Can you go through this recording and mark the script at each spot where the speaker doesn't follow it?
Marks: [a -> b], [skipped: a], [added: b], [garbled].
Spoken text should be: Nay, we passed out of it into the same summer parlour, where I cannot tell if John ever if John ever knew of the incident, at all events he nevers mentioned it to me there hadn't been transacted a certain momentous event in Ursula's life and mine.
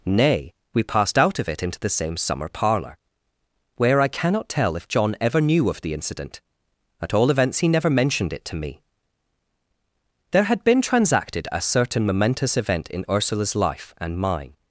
Nay, we passed out of it into the same summer parlour, where I cannot tell if John ever [skipped: if John ever] knew of the incident, at all events he [nevers -> never] mentioned it to me there [hadn't -> had] been transacted a certain momentous event in Ursula's life and mine.